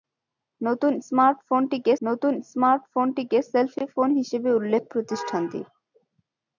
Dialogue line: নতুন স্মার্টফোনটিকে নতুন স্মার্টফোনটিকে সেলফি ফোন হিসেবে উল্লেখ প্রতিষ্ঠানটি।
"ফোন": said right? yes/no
yes